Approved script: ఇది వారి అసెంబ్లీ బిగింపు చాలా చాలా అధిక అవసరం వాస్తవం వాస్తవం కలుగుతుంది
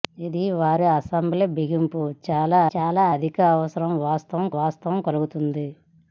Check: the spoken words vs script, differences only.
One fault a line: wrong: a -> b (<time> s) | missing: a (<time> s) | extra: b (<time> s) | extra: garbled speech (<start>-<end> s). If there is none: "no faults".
no faults